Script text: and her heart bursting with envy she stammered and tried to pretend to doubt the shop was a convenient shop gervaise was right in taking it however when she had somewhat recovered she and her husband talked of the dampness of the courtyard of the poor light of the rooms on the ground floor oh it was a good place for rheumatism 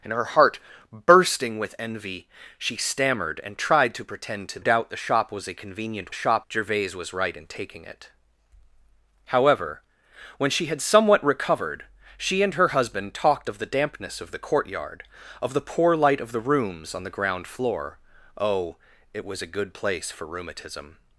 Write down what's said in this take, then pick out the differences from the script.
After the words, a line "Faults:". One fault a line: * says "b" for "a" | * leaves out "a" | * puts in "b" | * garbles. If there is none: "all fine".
and her heart bursting with envy she stammered and tried to pretend to doubt the shop was a convenient shop gervaise was right in taking it however when she had somewhat recovered she and her husband talked of the dampness of the courtyard of the poor light of the rooms on the ground floor oh it was a good place for rheumatism
Faults:
all fine